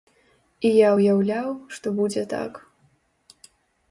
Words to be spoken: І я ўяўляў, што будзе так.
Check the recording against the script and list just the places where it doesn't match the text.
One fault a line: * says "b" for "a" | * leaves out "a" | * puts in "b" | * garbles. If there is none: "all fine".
all fine